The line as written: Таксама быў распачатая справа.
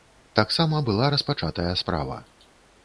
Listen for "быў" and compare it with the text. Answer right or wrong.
wrong